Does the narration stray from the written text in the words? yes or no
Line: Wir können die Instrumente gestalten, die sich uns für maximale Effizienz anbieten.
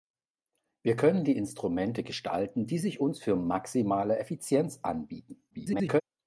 yes